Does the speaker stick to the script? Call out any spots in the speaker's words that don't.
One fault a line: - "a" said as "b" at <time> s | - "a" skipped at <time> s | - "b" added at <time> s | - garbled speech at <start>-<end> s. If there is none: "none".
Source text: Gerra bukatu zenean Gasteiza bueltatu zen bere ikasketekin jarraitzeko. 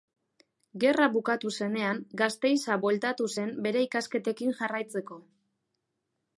none